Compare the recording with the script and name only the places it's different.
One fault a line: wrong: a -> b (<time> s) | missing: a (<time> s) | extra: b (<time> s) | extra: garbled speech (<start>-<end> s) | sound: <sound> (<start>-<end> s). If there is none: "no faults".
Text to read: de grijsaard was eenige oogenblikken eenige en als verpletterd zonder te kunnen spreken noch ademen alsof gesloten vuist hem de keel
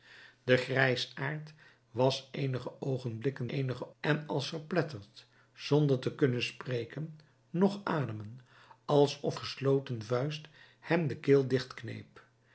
no faults